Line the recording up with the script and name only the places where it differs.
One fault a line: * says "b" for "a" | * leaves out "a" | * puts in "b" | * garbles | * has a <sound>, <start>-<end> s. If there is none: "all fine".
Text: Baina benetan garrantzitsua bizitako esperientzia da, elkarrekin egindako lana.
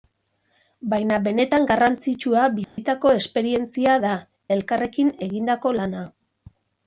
* has a dropout, 2.6-2.8 s